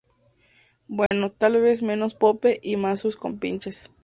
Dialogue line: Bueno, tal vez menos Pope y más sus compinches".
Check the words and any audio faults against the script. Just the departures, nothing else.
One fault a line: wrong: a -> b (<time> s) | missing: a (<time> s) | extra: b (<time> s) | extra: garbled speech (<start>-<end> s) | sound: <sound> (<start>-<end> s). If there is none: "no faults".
sound: dropout (1.1-1.1 s)